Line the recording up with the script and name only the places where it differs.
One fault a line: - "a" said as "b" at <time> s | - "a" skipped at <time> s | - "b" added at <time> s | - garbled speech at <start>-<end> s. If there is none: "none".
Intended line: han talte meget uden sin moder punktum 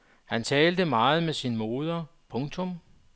- "uden" said as "med" at 1.2 s